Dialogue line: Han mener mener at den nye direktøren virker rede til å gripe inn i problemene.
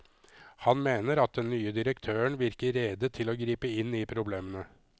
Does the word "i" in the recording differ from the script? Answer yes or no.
no